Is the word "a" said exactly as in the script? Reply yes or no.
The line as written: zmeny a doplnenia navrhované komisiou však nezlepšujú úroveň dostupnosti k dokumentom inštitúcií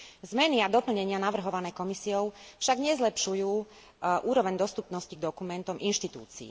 yes